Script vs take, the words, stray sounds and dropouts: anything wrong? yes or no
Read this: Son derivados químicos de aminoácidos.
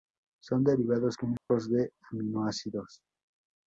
yes